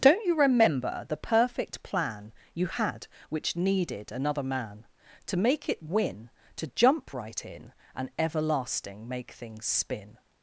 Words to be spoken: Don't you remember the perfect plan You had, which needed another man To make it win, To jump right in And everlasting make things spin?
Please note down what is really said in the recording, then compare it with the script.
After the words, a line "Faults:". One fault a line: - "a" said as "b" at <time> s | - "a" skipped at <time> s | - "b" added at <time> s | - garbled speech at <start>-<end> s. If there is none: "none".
Don't you remember the perfect plan You had, which needed another man To make it win, To jump right in And everlasting make things spin?
Faults:
none